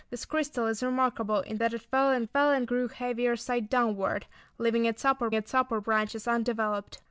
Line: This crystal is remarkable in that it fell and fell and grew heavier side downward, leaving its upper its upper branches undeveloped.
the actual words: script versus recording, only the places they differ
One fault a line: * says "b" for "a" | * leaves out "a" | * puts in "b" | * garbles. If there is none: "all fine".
all fine